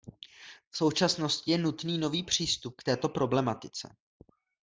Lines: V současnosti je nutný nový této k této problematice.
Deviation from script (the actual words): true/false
true